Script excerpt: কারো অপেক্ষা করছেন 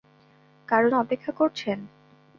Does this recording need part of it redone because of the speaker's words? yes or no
no